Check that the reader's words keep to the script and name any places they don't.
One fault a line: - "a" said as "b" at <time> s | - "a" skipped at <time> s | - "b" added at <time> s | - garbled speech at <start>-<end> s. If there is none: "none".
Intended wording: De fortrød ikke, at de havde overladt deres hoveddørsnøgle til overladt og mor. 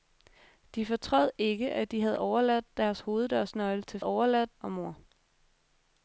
none